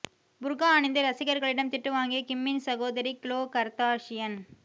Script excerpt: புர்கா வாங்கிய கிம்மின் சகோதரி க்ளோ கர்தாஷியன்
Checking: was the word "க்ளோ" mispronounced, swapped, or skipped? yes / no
no